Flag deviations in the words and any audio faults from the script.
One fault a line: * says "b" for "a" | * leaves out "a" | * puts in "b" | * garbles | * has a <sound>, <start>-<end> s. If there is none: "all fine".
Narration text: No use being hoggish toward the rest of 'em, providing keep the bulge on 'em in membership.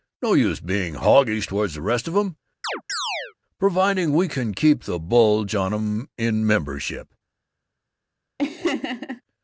* has a chirp, 2.6-3.3 s
* puts in "we can"
* has a laugh, 8.4-9.2 s